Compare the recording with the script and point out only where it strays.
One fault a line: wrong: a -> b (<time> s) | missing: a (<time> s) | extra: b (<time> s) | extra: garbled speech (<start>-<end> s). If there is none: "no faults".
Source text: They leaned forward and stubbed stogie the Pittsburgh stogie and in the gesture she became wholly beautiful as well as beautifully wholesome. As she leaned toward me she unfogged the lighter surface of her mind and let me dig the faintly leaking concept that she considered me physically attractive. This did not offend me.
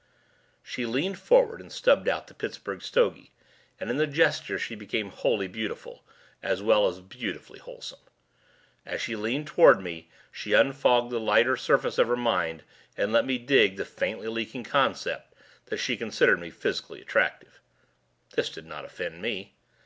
wrong: They -> She (0.6 s)
wrong: stogie -> out (2.1 s)